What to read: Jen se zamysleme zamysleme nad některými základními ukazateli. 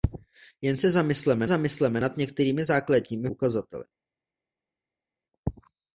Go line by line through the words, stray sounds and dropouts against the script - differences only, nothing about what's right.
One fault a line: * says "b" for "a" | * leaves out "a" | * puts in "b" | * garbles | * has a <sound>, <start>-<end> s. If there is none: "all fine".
all fine